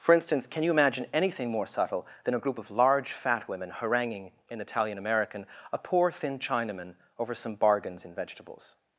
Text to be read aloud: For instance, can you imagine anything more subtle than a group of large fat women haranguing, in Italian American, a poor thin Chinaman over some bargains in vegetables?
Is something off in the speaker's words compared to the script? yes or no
no